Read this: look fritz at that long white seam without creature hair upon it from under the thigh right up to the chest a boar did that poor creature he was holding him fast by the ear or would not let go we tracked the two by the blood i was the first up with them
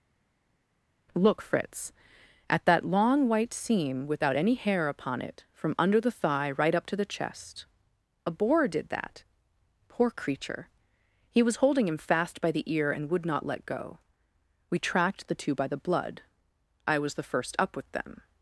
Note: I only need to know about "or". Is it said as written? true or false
false